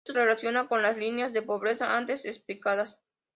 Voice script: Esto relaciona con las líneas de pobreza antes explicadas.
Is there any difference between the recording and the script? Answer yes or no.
no